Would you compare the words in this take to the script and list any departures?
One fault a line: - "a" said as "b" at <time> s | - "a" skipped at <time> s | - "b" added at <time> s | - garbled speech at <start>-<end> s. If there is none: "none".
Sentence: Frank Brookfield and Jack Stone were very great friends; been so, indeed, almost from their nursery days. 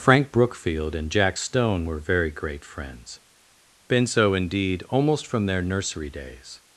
none